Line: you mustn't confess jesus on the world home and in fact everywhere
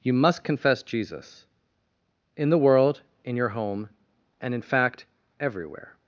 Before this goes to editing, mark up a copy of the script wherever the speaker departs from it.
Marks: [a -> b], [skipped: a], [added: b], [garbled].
you [mustn't -> must] confess jesus [on -> in] the world [added: in your] home and in fact everywhere